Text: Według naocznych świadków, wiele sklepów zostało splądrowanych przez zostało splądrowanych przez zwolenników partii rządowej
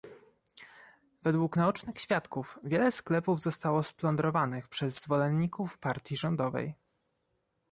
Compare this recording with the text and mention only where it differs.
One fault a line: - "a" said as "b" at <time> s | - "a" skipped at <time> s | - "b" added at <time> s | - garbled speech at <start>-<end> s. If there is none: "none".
- "zostało splądrowanych przez" skipped at 5.0 s